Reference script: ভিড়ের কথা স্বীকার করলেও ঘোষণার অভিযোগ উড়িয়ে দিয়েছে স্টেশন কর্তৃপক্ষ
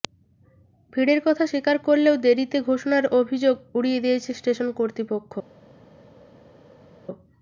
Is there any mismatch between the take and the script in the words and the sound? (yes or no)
yes